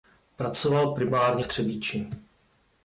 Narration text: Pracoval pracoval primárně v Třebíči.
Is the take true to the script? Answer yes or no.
no